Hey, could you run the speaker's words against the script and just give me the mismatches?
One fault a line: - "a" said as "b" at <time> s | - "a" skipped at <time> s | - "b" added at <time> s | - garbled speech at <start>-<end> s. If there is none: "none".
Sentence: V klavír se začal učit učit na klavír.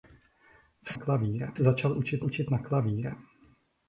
none